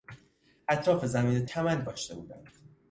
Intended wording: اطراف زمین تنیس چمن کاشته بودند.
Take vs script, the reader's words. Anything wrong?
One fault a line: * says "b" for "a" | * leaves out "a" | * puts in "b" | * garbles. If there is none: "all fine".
* leaves out "تنیس"